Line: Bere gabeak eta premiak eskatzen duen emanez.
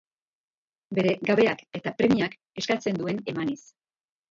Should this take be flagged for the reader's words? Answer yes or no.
no